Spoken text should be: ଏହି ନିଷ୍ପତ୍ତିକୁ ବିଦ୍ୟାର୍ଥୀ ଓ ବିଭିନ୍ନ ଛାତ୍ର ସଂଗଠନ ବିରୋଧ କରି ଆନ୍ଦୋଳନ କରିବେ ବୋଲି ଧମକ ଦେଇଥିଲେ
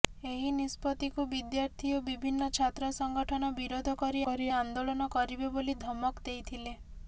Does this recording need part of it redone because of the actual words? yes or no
yes